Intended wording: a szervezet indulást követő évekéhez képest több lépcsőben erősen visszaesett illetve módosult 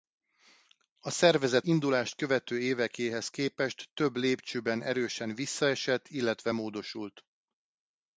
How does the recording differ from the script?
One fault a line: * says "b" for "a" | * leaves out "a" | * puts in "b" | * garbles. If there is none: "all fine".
all fine